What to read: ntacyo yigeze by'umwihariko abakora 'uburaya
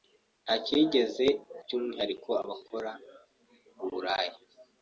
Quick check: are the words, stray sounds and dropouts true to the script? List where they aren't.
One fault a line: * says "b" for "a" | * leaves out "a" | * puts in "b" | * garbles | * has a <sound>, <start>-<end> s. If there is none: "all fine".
all fine